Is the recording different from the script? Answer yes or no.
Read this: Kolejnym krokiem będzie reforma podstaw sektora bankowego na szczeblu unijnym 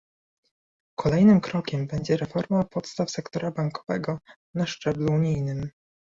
no